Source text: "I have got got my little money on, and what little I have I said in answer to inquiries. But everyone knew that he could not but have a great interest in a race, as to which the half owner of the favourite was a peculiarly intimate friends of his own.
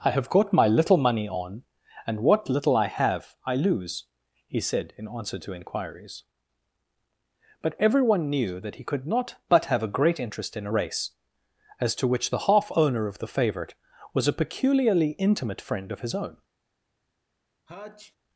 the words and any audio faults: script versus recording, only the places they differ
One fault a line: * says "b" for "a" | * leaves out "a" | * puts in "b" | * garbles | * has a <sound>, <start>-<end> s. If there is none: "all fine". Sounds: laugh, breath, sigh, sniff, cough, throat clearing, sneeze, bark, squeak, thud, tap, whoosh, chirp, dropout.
* leaves out "got"
* puts in "lose he"
* says "friend" for "friends"
* has a sneeze, 17.7-18.2 s